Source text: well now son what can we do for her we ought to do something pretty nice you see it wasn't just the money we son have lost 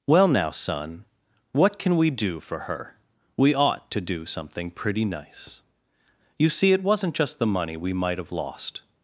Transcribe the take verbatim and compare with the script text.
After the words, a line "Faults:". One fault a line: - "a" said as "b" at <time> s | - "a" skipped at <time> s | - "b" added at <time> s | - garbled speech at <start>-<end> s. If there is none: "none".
well now son what can we do for her we ought to do something pretty nice you see it wasn't just the money we might have lost
Faults:
- "son" said as "might" at 7.9 s